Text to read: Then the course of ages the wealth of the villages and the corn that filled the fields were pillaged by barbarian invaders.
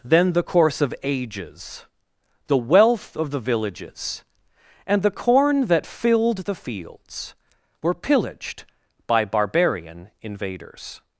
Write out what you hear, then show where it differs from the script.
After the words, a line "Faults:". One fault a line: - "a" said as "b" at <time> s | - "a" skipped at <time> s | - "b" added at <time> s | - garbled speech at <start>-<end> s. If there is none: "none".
Then the course of ages the wealth of the villages and the corn that filled the fields were pillaged by barbarian invaders.
Faults:
none